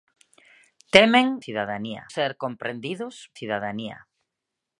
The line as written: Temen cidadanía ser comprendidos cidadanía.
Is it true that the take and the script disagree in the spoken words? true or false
false